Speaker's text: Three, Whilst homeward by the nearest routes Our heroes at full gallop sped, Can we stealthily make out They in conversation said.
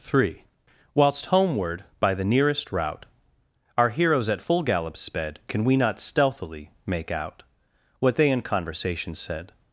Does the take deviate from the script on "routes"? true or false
true